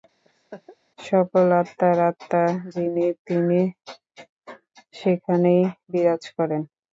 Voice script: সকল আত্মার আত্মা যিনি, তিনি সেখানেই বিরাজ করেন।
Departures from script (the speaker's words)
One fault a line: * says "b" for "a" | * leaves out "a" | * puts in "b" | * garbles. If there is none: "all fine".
all fine